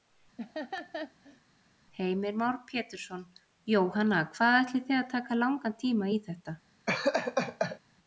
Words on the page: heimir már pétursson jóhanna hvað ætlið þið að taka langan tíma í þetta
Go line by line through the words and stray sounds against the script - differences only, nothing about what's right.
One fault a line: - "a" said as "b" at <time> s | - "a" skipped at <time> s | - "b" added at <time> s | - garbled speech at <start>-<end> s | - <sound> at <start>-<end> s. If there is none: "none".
- laugh at 0.4-1.4 s
- laugh at 6.9-7.8 s